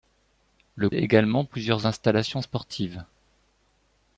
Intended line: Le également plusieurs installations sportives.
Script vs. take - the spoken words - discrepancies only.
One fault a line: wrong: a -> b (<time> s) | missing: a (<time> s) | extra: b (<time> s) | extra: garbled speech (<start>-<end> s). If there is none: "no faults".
no faults